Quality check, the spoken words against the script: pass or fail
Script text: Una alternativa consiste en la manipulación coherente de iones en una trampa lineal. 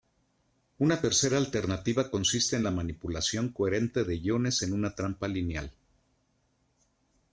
fail